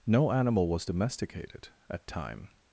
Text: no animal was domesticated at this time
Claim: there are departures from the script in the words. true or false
true